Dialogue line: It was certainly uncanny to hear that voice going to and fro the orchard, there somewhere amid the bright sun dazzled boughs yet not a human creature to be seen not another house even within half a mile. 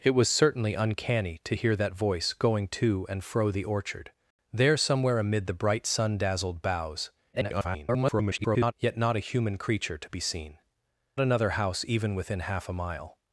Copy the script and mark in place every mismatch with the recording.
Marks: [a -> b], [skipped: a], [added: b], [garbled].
It was certainly uncanny to hear that voice going to and fro the orchard, there somewhere amid the bright sun dazzled boughs [garbled] yet not a human creature to be seen [skipped: not] another house even within half a mile.